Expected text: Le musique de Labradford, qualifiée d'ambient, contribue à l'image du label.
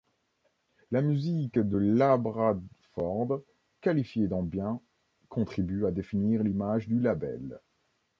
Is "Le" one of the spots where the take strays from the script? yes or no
yes